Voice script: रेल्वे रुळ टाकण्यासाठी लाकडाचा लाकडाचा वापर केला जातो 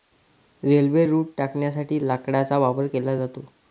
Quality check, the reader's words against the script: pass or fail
fail